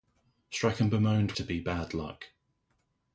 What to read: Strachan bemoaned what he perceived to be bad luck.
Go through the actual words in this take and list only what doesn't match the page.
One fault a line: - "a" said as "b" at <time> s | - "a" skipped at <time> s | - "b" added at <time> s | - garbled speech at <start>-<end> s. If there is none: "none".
- "what he perceived" skipped at 1.3 s